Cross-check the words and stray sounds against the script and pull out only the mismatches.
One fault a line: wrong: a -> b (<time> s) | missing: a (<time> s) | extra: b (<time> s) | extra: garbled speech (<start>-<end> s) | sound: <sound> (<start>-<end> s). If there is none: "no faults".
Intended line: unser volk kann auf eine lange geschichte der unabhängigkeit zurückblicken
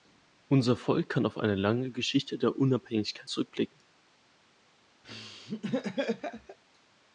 sound: laugh (5.0-6.6 s)